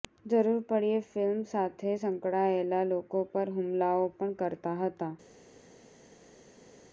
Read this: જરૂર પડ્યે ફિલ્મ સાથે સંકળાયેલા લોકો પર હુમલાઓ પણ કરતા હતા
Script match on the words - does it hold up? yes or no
yes